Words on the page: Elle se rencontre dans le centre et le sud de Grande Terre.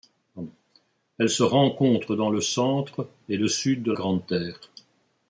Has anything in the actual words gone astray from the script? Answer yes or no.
no